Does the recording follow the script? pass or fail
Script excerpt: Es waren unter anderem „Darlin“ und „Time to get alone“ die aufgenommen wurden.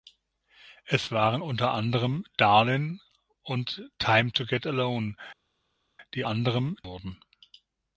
fail